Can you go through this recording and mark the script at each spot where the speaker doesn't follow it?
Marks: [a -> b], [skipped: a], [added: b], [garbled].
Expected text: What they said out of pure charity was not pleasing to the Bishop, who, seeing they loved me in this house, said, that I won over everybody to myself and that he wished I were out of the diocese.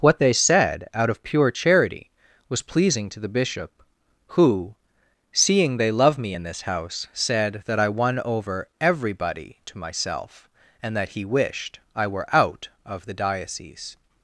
What they said out of pure charity was [skipped: not] pleasing to the Bishop, who, seeing they [loved -> love] me in this house, said, that I won over everybody to myself and that he wished I were out of the diocese.